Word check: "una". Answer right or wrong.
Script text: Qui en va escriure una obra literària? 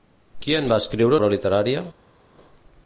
wrong